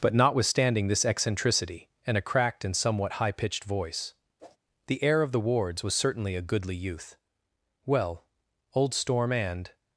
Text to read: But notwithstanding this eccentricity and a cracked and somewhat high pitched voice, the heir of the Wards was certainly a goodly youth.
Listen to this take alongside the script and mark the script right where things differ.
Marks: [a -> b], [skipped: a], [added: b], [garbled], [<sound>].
But notwithstanding this eccentricity and a cracked and somewhat high pitched voice, [whoosh] the heir of the Wards was certainly a goodly youth. [added: Well old Storm and]